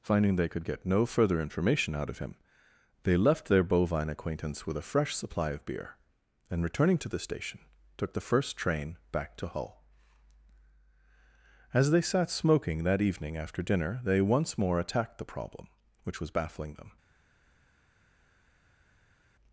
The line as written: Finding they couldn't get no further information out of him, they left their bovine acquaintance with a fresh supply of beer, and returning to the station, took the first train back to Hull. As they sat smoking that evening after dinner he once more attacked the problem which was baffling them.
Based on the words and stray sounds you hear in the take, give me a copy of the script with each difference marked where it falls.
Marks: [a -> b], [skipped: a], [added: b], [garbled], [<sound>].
Finding they [couldn't -> could] get no further information out of him, they left their bovine acquaintance with a fresh supply of beer, and returning to the station, took the first train back to Hull. As they sat smoking that evening after dinner [he -> they] once more attacked the problem which was baffling them.